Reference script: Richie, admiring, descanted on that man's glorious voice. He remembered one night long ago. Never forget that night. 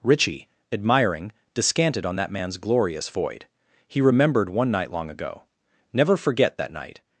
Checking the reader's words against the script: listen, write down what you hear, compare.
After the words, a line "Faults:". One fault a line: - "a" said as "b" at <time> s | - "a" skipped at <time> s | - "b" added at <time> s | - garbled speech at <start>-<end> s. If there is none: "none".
Richie, admiring, descanted on that man's glorious void. He remembered one night long ago. Never forget that night.
Faults:
- "voice" said as "void" at 3.1 s